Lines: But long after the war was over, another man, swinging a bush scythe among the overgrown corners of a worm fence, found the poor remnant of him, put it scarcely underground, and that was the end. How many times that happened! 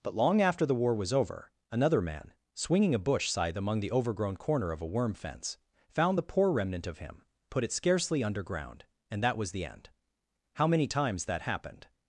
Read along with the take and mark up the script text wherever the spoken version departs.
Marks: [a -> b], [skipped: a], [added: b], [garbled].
But long after the war was over, another man, swinging a bush scythe among the overgrown [corners -> corner] of a worm fence, found the poor remnant of him, put it scarcely underground, and that was the end. How many times that happened!